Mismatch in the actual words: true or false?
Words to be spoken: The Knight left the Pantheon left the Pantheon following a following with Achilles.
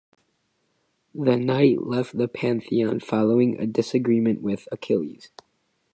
true